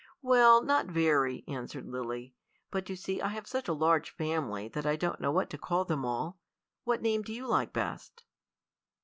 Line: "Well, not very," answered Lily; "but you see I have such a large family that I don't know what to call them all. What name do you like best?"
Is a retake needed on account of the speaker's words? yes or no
no